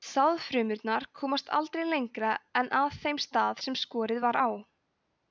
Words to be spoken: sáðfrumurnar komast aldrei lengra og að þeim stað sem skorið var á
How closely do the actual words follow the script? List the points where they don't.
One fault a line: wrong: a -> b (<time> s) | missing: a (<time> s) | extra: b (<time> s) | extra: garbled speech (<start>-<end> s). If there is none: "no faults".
wrong: og -> en (2.6 s)